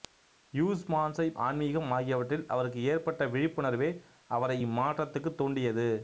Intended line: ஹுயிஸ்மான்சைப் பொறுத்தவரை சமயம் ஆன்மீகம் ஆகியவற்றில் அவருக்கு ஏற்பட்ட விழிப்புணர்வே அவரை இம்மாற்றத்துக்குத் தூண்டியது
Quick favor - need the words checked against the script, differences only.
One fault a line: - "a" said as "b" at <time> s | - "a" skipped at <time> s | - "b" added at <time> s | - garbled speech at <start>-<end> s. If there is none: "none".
- "பொறுத்தவரை சமயம்" skipped at 1.4 s